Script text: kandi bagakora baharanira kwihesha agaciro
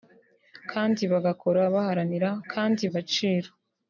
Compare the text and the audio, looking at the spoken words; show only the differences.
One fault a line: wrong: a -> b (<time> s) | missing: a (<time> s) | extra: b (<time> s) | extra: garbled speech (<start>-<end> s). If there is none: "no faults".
wrong: kwihesha -> kandi (2.5 s)